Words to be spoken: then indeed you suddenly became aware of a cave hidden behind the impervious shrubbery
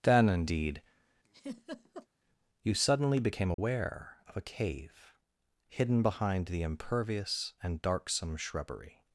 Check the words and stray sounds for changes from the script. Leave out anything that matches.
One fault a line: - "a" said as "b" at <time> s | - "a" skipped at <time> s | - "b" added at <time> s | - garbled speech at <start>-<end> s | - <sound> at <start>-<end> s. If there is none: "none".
- laugh at 1.2-2.1 s
- dropout at 3.5-3.6 s
- "and darksome" added at 7.6 s